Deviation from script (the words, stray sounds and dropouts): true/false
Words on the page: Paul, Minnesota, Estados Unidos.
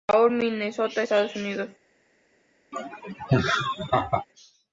true